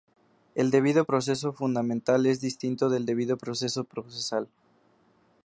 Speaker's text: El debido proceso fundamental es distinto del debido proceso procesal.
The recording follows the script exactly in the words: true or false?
true